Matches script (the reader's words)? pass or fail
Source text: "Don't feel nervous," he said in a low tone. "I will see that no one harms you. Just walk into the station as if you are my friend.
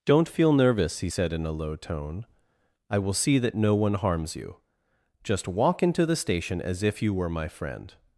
fail